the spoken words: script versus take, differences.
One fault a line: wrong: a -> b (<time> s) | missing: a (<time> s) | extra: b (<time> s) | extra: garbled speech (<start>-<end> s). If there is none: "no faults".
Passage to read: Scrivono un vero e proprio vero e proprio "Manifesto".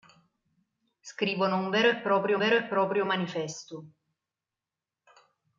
no faults